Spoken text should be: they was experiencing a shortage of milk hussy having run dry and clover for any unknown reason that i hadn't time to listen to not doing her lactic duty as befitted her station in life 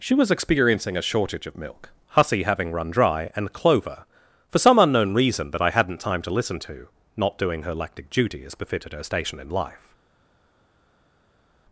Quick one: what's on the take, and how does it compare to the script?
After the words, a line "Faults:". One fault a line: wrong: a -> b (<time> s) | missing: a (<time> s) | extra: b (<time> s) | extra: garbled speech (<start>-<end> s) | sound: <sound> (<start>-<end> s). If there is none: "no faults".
she was experiencing a shortage of milk hussy having run dry and clover for some unknown reason that i hadn't time to listen to not doing her lactic duty as befitted her station in life
Faults:
wrong: they -> she (0.0 s)
wrong: any -> some (4.6 s)